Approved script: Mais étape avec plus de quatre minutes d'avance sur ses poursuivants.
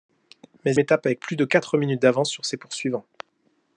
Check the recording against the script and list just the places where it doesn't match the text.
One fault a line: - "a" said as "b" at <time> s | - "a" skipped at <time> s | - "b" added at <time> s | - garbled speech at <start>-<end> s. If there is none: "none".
none